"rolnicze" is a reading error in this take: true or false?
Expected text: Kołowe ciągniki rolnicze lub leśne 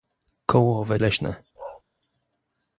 true